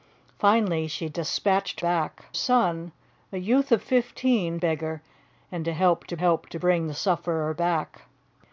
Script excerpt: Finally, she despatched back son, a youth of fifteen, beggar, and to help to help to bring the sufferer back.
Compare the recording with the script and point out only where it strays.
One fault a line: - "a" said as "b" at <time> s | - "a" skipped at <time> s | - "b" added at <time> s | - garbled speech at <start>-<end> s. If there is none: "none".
none